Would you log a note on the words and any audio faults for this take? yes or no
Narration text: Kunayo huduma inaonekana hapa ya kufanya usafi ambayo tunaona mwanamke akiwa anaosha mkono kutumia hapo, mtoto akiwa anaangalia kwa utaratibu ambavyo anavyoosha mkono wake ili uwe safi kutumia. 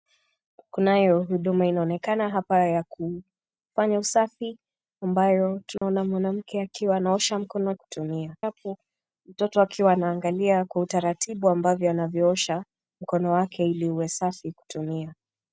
yes